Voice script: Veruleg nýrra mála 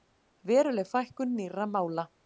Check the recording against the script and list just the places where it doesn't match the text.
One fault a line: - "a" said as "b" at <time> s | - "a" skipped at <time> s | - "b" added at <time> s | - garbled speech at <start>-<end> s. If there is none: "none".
- "fækkun" added at 0.9 s